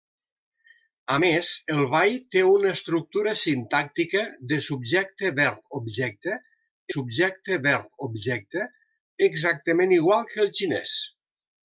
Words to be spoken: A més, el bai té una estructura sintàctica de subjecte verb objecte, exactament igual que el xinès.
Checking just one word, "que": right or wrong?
right